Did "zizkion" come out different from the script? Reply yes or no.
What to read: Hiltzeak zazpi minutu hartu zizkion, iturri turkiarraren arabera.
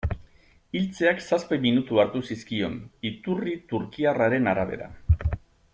no